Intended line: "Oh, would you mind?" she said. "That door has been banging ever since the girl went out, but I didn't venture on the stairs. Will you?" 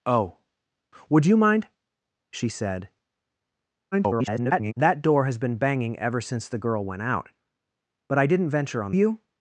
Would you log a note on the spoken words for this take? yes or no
yes